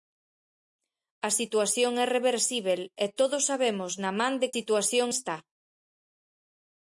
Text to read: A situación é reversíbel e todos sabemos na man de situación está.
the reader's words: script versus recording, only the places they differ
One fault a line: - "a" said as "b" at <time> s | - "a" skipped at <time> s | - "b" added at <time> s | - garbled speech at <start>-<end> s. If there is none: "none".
none